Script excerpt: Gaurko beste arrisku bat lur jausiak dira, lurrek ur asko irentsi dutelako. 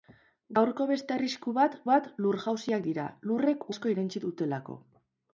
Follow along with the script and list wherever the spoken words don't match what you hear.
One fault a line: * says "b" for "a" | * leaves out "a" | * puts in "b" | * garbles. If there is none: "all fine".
* puts in "bat"
* leaves out "ur"